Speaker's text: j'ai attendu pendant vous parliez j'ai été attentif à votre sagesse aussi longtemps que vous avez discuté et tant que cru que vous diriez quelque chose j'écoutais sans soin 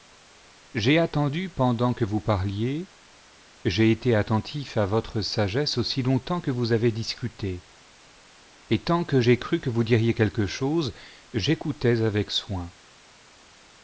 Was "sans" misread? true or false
true